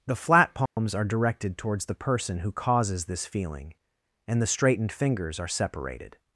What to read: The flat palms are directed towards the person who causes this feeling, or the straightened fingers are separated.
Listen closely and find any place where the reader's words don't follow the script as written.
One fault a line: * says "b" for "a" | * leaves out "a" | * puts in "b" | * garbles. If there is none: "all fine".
* says "and" for "or"